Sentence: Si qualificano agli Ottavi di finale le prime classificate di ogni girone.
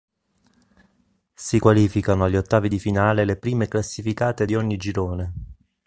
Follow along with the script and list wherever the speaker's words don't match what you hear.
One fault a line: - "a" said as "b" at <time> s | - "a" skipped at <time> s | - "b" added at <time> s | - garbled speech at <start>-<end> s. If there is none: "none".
none